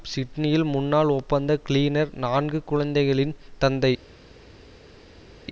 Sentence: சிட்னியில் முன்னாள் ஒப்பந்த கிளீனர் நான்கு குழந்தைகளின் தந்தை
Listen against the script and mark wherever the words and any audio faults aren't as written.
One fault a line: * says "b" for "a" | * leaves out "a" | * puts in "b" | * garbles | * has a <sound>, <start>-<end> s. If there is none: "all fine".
all fine